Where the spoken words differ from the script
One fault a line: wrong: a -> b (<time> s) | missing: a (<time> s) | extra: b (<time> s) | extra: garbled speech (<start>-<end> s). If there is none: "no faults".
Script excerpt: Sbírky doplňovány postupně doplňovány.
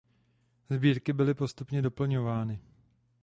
wrong: doplňovány -> byly (1.1 s)